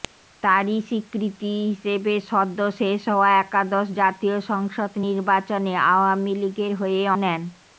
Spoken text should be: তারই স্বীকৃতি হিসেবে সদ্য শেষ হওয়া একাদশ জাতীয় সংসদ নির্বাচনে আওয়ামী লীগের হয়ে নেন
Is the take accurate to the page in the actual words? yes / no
yes